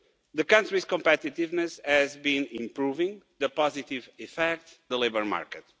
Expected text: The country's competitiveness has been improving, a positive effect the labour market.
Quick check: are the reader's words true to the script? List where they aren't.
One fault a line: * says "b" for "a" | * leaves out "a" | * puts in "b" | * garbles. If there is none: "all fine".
all fine